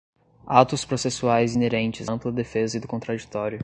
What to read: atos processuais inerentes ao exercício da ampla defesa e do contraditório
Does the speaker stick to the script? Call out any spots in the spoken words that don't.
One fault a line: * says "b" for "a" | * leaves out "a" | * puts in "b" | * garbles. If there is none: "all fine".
* leaves out "ao exercício da"